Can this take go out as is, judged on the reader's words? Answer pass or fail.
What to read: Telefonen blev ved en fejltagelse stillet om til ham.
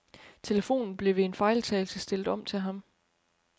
pass